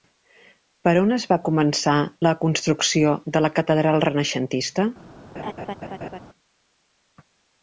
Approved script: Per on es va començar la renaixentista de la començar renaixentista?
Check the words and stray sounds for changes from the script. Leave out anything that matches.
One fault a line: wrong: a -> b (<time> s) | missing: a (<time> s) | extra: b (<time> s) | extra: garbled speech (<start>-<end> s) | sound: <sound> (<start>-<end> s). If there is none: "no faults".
wrong: renaixentista -> construcció (2.4 s)
wrong: començar -> catedral (3.6 s)
sound: laugh (5.3-6.2 s)